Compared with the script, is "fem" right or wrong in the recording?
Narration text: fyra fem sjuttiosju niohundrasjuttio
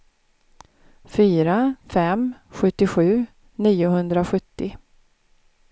right